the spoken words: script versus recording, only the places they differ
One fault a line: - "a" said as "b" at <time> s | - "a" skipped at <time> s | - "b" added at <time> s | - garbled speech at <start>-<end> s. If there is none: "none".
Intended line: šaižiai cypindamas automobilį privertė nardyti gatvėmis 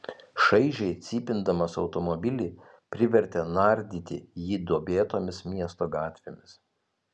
- "jį duobėtomis miesto" added at 4.5 s